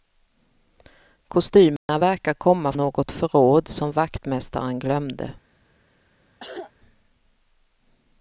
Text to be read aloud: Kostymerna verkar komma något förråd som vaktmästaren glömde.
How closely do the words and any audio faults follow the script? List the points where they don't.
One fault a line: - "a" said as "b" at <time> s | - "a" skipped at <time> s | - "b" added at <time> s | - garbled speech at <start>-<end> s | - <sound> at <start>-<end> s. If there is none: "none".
- dropout at 1.8-1.9 s
- cough at 6.4-6.7 s